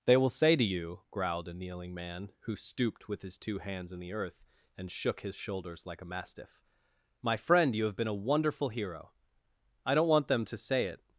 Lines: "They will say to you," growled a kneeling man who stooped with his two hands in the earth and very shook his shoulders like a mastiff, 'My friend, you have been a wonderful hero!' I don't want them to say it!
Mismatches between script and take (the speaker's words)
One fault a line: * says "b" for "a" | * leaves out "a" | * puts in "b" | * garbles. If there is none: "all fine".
* leaves out "very"